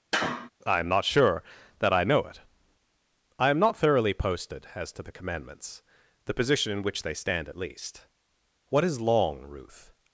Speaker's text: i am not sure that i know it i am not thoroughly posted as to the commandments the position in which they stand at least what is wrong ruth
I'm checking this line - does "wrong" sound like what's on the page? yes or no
no